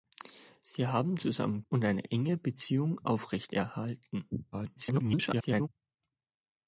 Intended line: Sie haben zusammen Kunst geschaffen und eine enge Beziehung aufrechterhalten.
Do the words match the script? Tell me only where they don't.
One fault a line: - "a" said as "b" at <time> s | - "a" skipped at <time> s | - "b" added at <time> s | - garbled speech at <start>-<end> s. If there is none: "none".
- "Kunst geschaffen" skipped at 1.6 s
- garbled speech at 4.5-5.7 s